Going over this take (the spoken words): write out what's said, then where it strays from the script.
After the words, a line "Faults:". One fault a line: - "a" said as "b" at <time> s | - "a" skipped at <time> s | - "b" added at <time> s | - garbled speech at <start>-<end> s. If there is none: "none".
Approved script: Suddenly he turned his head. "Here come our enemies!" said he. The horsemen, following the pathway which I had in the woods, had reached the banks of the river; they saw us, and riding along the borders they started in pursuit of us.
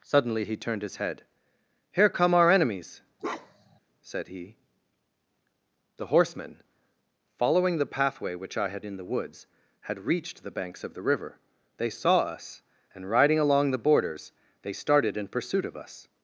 Suddenly he turned his head. "Here come our enemies!" said he. The horsemen, following the pathway which I had in the woods, had reached the banks of the river; they saw us, and riding along the borders they started in pursuit of us.
Faults:
none